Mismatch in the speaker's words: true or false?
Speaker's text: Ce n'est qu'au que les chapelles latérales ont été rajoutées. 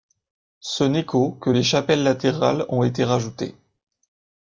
false